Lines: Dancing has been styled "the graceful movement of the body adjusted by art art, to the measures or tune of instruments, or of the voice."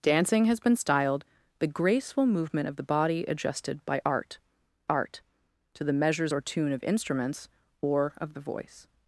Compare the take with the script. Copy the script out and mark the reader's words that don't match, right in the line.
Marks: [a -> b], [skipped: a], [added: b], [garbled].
Dancing has been styled "the graceful movement of the body adjusted by art art, to the measures or tune of instruments, or of the voice."